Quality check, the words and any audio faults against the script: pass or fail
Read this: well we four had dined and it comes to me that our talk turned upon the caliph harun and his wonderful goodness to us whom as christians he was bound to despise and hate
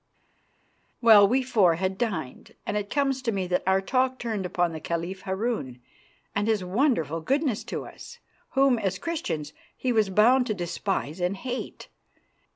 pass